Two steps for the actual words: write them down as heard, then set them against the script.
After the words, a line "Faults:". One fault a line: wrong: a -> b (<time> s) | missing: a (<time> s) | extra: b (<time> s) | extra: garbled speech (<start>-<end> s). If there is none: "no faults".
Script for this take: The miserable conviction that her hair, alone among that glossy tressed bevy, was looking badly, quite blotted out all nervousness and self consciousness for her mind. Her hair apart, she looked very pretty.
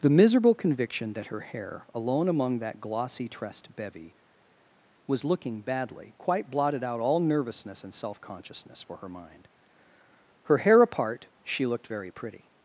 The miserable conviction that her hair, alone among that glossy tressed bevy, was looking badly, quite blotted out all nervousness and self consciousness for her mind. Her hair apart, she looked very pretty.
Faults:
no faults